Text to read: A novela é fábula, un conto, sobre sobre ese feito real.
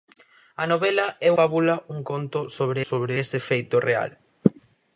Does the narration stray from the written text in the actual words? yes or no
no